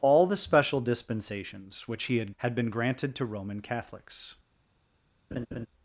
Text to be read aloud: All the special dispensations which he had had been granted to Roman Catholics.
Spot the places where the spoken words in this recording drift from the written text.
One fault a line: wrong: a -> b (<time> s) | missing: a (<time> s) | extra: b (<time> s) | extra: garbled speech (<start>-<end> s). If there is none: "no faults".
no faults